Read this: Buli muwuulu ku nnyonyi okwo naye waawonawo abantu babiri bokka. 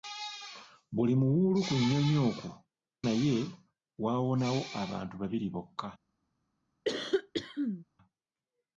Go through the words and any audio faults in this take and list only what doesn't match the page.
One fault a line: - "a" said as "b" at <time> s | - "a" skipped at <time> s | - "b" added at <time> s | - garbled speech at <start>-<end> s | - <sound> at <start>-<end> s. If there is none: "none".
- cough at 6.8-7.8 s